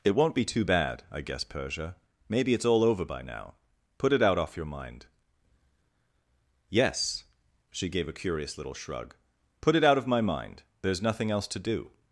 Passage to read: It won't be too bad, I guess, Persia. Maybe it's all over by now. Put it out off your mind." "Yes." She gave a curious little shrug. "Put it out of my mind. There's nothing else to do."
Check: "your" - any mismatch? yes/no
no